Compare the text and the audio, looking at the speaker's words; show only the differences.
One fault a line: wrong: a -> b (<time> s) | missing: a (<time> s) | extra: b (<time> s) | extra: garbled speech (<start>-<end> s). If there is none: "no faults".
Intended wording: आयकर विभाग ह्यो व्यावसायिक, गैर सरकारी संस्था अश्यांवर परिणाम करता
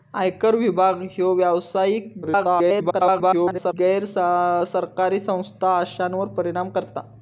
extra: garbled speech (2.2-3.7 s)